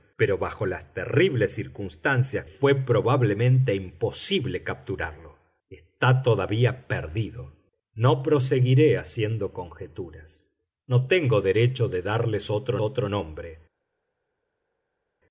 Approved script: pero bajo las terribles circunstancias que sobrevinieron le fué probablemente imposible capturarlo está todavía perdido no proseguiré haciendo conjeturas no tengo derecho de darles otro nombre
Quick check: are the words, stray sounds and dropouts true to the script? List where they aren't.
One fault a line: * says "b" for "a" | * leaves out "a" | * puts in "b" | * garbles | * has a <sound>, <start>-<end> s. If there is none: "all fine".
* leaves out "que sobrevinieron le"
* puts in "otro"